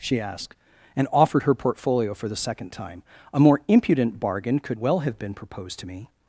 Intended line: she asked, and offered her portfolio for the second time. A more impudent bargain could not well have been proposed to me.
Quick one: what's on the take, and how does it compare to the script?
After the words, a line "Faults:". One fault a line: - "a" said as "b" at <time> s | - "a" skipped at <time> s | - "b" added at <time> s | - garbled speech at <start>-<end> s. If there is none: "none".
she asked, and offered her portfolio for the second time. A more impudent bargain could well have been proposed to me.
Faults:
- "not" skipped at 4.8 s